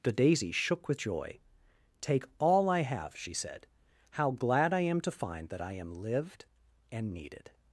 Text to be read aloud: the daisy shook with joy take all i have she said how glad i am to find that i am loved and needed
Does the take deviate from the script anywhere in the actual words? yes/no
yes